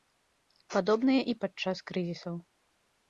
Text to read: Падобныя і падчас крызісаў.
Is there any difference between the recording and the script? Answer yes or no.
no